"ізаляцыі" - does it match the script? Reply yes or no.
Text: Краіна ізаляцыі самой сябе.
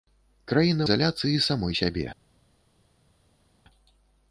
yes